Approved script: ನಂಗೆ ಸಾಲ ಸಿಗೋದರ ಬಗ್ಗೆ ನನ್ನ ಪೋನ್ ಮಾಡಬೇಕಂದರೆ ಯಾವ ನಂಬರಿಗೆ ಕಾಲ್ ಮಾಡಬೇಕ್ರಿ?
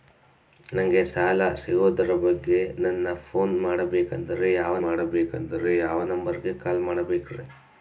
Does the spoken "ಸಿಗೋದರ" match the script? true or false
true